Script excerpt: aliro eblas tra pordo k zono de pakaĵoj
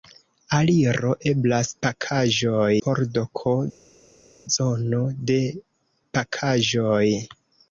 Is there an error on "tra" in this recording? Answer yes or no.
yes